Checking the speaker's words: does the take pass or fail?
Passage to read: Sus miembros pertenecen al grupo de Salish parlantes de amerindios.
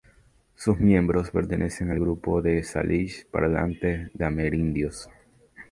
pass